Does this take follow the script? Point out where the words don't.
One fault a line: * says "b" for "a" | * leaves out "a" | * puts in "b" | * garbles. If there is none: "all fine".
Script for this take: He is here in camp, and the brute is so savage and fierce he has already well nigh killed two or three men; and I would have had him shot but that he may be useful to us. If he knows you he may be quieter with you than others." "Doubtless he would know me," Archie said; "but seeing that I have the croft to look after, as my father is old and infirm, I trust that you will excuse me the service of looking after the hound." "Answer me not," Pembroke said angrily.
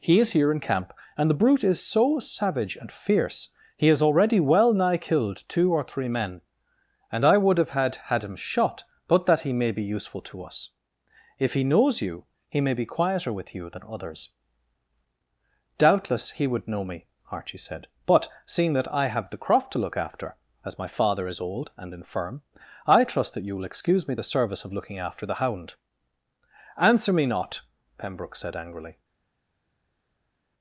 * puts in "had"